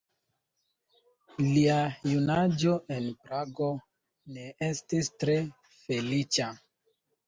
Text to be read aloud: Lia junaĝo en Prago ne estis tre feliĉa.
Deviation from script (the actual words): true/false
false